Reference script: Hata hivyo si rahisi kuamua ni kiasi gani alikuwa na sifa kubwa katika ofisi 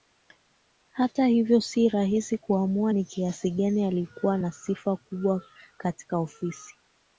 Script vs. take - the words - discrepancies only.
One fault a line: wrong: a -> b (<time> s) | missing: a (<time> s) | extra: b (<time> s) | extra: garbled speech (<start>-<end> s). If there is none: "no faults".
no faults